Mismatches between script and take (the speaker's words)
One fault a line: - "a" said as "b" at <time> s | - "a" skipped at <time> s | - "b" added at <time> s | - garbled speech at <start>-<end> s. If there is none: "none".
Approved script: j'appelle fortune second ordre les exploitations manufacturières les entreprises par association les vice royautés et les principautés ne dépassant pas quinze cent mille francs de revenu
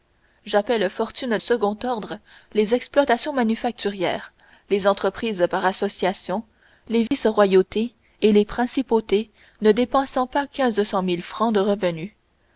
none